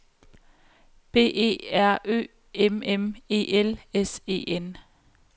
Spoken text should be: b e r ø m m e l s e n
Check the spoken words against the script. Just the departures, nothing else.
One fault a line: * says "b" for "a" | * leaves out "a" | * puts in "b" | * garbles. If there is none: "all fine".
all fine